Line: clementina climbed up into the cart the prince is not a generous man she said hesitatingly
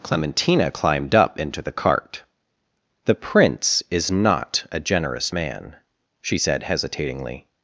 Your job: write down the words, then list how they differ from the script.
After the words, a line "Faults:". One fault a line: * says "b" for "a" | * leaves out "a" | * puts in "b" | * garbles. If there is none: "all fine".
clementina climbed up into the cart the prince is not a generous man she said hesitatingly
Faults:
all fine